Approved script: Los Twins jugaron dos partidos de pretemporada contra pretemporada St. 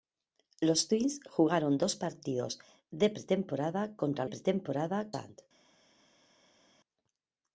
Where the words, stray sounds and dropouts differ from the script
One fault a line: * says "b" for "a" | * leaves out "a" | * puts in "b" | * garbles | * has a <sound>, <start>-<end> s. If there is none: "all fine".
all fine